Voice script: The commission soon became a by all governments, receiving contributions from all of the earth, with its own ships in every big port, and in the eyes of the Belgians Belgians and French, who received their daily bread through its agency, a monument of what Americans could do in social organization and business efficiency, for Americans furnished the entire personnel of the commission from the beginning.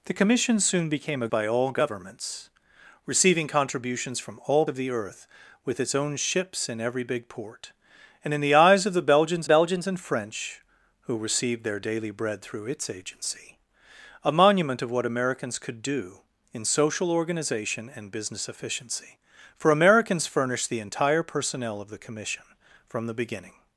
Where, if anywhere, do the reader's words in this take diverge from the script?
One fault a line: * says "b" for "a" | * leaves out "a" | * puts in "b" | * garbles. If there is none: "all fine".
all fine